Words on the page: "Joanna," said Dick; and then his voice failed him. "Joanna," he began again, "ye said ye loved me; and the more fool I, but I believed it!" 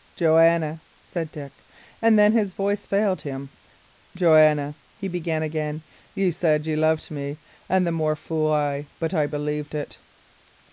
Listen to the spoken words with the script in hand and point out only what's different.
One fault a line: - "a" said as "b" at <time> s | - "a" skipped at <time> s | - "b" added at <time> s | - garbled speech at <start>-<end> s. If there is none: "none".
none